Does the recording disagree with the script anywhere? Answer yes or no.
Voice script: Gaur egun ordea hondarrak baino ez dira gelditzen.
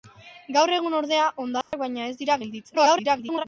yes